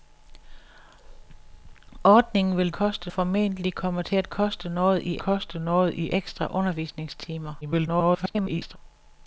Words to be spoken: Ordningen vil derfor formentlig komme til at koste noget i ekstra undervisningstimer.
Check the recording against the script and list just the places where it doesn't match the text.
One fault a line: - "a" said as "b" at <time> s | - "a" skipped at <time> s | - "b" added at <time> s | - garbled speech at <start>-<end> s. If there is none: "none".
- "derfor" said as "koste" at 2.7 s
- "koste noget i" added at 5.2 s
- garbled speech at 7.6-8.8 s